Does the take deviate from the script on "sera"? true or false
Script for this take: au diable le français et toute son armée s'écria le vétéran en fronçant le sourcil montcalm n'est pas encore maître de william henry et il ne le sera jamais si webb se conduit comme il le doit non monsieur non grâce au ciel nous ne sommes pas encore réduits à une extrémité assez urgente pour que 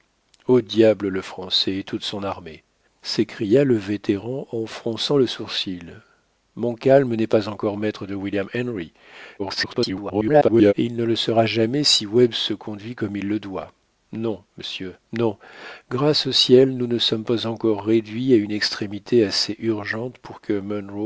false